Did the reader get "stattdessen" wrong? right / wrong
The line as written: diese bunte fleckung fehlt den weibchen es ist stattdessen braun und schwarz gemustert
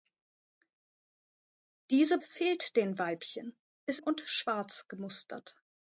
wrong